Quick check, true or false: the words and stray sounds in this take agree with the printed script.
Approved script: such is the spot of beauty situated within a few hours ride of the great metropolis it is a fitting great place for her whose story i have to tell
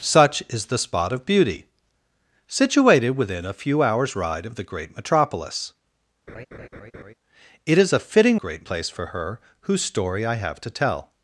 false